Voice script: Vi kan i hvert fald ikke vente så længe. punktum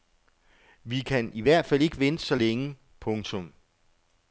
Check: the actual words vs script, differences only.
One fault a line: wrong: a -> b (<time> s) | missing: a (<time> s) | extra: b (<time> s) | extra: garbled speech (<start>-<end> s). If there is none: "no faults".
no faults